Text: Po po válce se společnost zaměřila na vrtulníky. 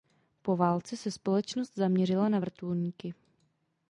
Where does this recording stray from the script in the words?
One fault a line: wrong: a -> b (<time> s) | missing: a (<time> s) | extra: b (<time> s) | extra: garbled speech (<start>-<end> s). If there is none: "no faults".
missing: po (0.6 s)